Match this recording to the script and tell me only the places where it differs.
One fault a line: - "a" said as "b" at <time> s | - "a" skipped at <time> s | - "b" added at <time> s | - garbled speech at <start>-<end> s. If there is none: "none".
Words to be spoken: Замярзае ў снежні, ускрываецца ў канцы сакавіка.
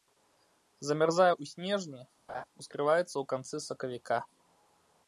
none